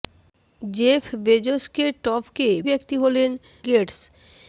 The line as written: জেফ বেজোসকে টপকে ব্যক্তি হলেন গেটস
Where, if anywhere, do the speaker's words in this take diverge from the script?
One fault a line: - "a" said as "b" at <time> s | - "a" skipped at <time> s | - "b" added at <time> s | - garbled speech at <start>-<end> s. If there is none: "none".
none